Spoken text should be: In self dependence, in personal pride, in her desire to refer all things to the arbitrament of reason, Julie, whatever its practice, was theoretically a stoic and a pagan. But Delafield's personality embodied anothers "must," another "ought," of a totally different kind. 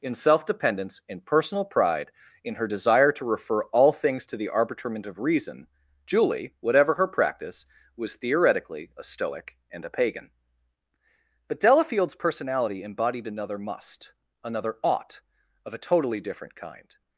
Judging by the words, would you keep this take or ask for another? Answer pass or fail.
fail